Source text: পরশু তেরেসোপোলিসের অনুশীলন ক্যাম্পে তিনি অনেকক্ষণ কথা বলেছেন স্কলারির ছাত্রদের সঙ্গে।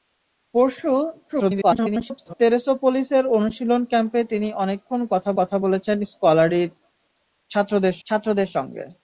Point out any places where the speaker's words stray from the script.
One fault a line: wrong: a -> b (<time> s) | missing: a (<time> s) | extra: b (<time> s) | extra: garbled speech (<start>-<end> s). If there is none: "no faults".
extra: garbled speech (1.3-2.3 s)
extra: কথা (5.4 s)
extra: ছাত্রদের (8.1 s)